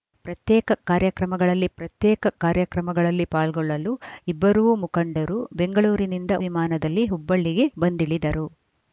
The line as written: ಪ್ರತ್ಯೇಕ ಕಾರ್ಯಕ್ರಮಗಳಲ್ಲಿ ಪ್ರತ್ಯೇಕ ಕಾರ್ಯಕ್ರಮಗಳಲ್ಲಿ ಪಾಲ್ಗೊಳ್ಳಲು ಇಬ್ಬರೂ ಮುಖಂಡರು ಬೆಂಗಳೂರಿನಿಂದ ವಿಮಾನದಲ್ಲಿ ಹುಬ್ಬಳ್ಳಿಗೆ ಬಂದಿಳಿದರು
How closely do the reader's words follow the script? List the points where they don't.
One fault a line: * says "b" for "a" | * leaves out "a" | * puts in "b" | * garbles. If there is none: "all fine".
all fine